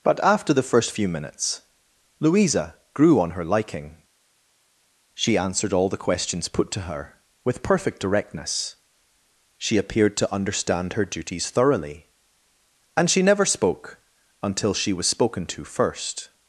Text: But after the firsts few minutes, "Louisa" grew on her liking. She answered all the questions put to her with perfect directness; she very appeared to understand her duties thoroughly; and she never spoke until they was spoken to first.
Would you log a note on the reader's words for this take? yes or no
yes